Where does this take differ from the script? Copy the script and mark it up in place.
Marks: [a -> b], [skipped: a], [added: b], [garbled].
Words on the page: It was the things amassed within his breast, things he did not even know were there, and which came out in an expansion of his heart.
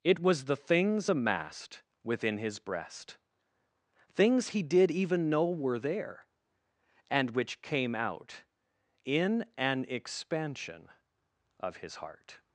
It was the things amassed within his breast, things he did [skipped: not] even know were there, and which came out in an expansion of his heart.